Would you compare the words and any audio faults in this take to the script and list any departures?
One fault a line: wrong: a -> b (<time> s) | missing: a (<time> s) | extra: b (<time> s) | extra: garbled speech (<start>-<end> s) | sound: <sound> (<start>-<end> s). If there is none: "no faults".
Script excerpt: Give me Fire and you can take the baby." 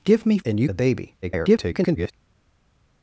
missing: Fire (0.4 s)
missing: can take (0.7 s)
extra: garbled speech (1.2-2.1 s)